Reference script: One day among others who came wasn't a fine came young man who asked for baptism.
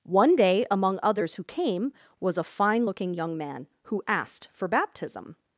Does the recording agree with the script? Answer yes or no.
no